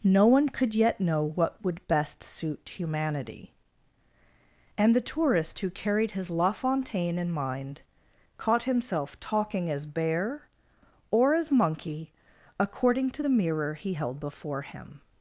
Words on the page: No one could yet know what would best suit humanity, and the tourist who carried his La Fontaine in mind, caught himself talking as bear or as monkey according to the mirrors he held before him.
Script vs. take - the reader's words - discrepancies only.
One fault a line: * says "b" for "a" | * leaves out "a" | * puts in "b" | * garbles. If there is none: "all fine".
* says "mirror" for "mirrors"